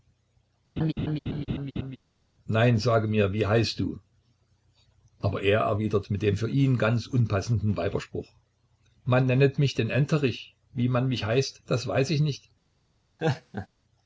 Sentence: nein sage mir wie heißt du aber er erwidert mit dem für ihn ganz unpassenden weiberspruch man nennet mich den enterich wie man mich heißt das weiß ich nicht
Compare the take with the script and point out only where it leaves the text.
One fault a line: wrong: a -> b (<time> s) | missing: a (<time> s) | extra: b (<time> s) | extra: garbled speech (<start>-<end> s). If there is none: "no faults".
no faults